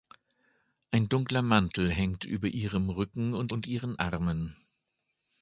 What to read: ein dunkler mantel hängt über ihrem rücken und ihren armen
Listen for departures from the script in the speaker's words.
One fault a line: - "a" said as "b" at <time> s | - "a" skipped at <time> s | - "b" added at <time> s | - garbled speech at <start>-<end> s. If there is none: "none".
- "und" added at 3.5 s